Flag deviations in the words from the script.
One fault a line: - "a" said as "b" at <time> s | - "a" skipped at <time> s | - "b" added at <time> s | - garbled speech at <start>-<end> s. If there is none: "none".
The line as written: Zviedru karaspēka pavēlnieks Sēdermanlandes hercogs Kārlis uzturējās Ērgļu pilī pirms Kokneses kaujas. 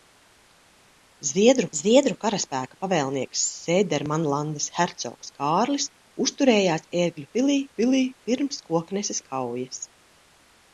- "zviedru" added at 1.8 s
- "pilī" added at 7.8 s